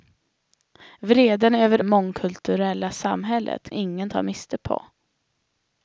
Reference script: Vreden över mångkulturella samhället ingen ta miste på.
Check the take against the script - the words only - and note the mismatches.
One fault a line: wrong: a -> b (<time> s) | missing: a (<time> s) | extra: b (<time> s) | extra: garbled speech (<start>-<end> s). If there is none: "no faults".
no faults